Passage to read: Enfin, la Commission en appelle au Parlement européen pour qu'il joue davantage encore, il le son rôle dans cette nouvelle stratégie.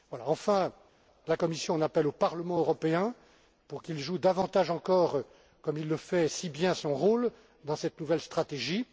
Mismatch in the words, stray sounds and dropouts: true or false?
true